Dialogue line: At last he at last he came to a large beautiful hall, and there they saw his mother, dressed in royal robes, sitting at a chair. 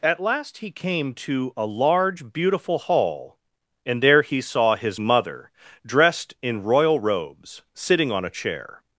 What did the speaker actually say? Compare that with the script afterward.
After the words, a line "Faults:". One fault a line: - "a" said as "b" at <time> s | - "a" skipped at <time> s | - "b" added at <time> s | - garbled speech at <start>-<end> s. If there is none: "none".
At last he came to a large beautiful hall, and there he saw his mother, dressed in royal robes, sitting on a chair.
Faults:
- "at last he" skipped at 0.7 s
- "they" said as "he" at 4.2 s
- "at" said as "on" at 8.1 s